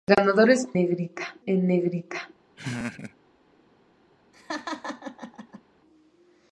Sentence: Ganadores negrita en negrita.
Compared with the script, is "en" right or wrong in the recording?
right